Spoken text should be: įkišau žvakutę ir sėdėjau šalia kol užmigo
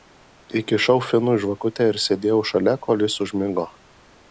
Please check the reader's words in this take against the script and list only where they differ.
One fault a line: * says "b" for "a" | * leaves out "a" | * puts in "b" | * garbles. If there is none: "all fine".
* puts in "finui"
* puts in "jis"